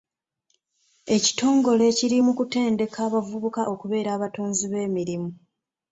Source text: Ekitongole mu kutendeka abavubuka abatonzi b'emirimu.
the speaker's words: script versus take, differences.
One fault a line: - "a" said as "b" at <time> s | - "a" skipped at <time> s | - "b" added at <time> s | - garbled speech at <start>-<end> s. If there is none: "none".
- "kiri" added at 2.0 s
- "okubeera" added at 3.7 s